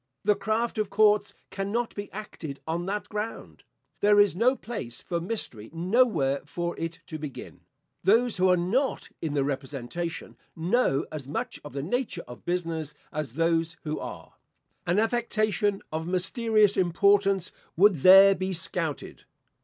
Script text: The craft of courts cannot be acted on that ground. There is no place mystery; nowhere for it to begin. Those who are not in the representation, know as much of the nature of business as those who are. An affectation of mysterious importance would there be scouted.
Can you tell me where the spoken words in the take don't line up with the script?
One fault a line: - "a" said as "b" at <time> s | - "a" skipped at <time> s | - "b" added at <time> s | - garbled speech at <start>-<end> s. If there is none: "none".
- "for" added at 5.0 s